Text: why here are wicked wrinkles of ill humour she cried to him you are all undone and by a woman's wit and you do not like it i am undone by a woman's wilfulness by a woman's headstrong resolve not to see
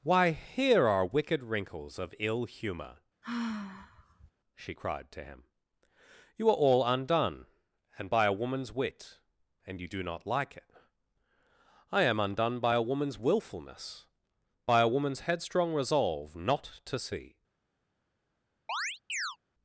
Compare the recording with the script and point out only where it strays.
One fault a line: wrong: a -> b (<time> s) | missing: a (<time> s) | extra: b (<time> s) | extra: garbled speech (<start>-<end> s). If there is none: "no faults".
no faults